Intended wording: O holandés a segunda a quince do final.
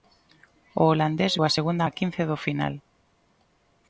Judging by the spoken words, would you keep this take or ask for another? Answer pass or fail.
pass